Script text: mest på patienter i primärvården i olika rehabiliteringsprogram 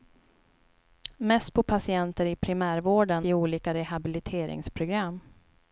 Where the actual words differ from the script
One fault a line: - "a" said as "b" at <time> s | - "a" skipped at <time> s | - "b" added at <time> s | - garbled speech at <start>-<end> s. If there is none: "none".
none